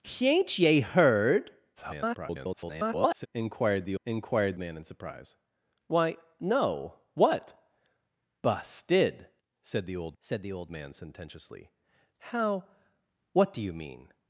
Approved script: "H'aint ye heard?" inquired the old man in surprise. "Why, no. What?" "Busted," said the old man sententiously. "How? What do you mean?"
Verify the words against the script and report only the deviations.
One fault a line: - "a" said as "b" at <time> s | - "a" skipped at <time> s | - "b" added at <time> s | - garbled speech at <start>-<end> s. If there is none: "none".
- garbled speech at 1.8-3.3 s
- "old" said as "inquired" at 4.0 s
- "said the old" added at 10.2 s